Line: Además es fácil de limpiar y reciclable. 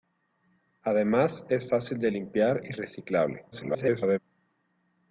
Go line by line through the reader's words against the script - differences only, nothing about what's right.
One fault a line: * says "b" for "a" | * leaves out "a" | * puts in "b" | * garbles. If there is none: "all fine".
* garbles